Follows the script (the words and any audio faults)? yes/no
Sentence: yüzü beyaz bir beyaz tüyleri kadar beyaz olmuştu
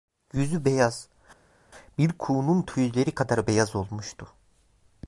no